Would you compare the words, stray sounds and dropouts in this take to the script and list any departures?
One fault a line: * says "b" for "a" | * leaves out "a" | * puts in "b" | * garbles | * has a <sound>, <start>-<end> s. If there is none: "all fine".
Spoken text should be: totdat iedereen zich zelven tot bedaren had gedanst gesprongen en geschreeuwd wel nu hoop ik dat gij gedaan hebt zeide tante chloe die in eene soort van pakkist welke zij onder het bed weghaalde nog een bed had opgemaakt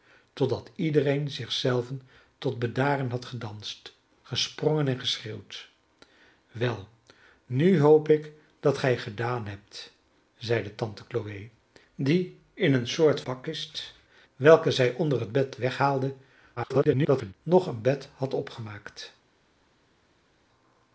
* leaves out "van"
* garbles